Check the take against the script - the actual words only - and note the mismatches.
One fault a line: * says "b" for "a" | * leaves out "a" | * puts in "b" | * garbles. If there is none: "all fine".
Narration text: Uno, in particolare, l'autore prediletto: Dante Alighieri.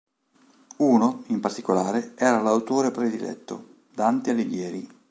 * puts in "era"